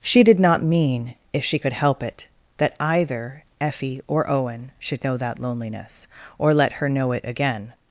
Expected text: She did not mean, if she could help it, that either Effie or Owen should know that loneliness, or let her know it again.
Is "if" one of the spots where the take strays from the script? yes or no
no